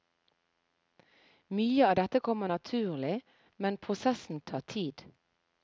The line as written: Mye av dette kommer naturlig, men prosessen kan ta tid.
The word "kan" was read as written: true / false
false